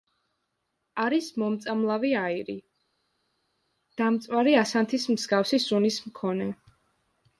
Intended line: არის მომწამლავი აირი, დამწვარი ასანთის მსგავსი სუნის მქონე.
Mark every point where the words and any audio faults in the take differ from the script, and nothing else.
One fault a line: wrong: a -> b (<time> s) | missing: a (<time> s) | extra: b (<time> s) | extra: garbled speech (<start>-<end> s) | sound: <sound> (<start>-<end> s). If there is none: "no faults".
no faults